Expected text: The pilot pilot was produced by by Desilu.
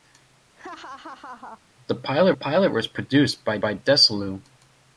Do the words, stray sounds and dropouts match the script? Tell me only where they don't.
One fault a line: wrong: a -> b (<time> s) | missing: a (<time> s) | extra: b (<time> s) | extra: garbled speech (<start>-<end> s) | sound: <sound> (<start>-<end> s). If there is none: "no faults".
sound: laugh (0.6-1.6 s)